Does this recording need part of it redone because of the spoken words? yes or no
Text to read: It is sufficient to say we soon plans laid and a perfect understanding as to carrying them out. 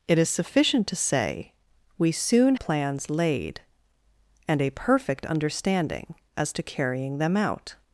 no